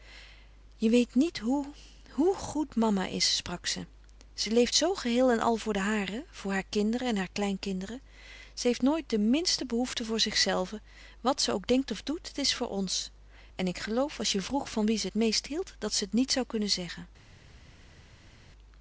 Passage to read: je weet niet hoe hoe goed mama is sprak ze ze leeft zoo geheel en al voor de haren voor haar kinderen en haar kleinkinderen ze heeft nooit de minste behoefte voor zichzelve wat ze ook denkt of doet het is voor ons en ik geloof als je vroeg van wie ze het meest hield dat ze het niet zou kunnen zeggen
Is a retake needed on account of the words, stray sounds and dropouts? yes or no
no